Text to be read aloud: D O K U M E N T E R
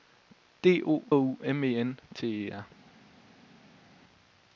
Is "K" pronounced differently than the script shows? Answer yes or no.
yes